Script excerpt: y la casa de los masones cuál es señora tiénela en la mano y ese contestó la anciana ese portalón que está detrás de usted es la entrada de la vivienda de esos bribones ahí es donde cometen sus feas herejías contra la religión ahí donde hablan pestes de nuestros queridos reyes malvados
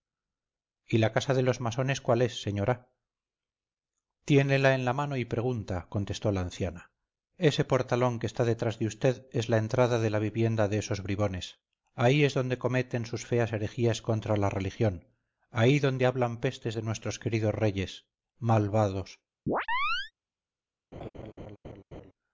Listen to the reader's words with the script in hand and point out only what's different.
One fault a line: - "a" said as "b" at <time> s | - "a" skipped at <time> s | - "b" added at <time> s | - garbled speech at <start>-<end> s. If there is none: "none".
- "ese" said as "pregunta" at 5.2 s